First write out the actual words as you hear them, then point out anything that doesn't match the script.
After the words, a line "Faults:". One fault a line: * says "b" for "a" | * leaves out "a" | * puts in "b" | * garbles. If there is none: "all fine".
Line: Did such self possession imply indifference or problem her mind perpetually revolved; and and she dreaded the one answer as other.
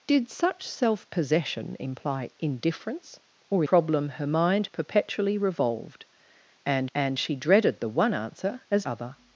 Did such self possession imply indifference or problem her mind perpetually revolved; and and she dreaded the one answer as other.
Faults:
all fine